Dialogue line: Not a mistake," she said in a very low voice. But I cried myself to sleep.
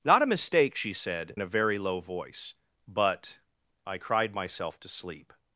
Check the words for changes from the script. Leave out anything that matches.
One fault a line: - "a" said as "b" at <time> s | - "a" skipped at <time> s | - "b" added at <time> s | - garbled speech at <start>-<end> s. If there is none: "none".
- "in" skipped at 1.4 s